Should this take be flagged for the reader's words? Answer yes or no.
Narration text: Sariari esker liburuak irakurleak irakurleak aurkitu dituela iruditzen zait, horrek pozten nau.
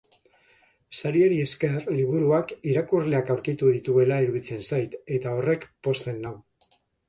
yes